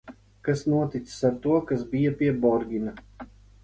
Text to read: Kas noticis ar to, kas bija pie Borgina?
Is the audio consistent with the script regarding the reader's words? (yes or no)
yes